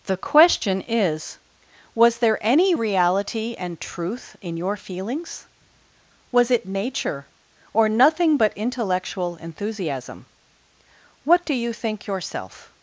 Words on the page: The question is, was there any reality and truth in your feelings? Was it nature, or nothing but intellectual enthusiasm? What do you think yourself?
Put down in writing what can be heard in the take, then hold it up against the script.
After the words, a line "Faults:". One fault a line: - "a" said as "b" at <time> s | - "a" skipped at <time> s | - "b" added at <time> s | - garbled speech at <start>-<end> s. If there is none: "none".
The question is, was there any reality and truth in your feelings? Was it nature, or nothing but intellectual enthusiasm? What do you think yourself?
Faults:
none